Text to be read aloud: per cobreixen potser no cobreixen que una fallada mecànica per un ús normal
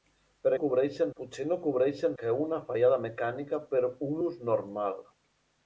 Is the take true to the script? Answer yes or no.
yes